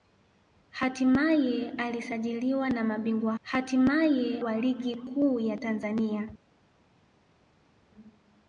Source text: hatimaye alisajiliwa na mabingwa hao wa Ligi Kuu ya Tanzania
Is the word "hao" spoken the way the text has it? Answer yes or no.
no